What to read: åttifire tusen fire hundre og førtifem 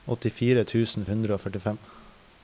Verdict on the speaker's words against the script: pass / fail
fail